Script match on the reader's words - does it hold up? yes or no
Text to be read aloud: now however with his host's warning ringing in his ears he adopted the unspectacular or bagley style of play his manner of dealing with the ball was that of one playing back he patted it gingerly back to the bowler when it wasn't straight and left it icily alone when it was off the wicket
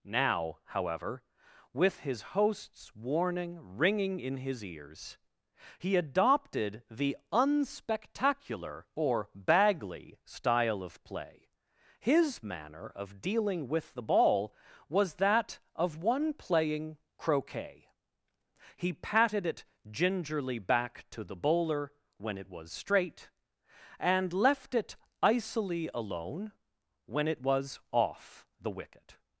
no